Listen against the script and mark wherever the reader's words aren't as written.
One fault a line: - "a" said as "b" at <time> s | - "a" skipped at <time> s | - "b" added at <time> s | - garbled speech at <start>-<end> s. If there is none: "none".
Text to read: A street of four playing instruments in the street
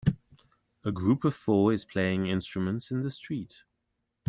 - "street" said as "group" at 0.9 s
- "is" added at 1.7 s